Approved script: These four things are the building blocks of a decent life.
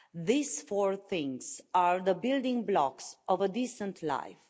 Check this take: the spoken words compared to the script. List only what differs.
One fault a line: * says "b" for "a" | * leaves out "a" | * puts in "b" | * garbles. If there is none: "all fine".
all fine